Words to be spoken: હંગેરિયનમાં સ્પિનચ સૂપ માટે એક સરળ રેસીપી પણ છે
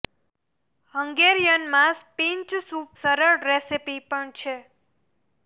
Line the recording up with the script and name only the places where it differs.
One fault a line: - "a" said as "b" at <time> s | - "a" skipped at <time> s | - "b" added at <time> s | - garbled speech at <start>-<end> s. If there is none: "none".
- "માટે એક" skipped at 2.9 s